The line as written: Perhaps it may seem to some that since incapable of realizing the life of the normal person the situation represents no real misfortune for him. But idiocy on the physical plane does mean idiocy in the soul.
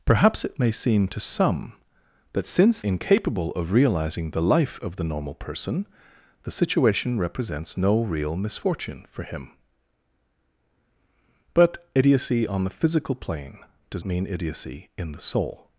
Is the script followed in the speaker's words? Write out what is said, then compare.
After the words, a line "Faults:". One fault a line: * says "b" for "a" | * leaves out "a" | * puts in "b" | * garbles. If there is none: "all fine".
Perhaps it may seem to some that since incapable of realizing the life of the normal person the situation represents no real misfortune for him. But idiocy on the physical plane does mean idiocy in the soul.
Faults:
all fine